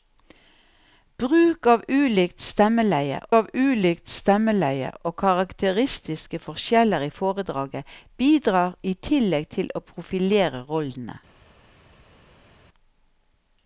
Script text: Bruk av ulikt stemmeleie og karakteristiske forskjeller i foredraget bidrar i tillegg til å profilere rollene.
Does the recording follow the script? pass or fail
fail